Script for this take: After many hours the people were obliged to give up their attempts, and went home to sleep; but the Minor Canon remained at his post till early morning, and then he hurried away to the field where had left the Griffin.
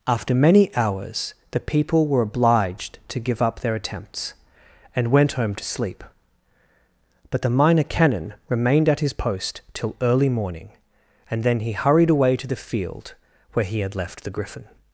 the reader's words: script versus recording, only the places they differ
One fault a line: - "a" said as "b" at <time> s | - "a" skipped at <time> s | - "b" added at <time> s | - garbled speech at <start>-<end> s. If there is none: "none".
- "he" added at 13.7 s